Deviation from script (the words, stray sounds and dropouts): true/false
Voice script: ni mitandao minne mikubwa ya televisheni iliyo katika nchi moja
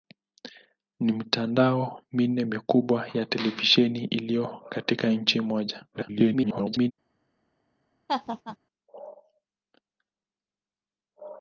true